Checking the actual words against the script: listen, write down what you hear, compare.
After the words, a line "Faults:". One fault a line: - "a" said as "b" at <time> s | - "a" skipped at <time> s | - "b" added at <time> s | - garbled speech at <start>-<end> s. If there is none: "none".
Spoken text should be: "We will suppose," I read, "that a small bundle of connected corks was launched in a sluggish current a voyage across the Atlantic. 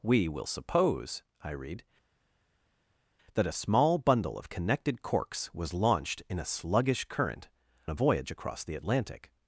"We will suppose," I read, "that a small bundle of connected corks was launched in a sluggish current a voyage across the Atlantic.
Faults:
none